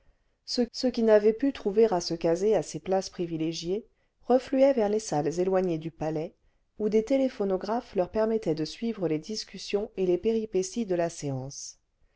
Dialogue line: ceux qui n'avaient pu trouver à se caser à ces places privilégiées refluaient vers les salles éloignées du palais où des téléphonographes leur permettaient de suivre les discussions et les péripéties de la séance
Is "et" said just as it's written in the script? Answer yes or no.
yes